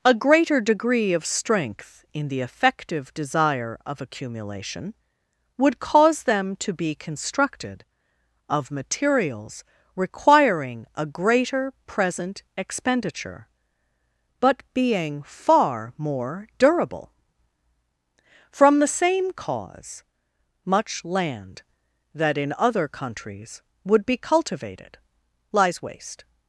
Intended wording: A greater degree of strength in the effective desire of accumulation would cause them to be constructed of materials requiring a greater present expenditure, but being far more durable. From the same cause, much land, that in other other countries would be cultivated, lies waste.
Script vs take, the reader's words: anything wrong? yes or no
yes